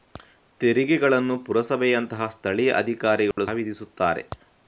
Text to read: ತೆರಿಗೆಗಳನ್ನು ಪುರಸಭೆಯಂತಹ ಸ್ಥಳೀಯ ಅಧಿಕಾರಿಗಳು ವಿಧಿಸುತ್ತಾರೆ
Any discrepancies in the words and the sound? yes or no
yes